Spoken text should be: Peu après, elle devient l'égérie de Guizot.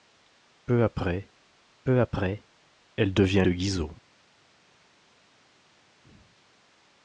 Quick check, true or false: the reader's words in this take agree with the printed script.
false